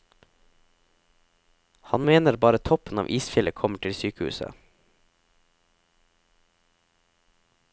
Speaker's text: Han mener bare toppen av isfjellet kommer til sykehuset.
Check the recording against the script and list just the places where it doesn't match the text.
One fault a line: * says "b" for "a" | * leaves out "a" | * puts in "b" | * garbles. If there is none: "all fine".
all fine